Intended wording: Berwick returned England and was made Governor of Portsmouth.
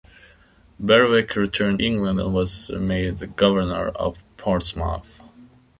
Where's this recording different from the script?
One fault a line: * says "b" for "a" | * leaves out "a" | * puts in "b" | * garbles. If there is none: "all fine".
all fine